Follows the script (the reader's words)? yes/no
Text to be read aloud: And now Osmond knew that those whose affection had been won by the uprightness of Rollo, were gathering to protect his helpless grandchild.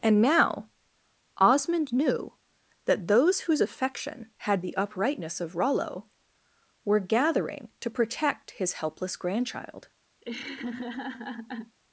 no